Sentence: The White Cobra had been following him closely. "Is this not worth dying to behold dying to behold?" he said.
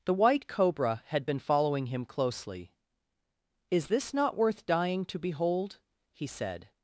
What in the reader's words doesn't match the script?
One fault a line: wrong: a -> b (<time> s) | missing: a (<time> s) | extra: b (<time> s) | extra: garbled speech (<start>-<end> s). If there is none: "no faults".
missing: dying to behold (5.8 s)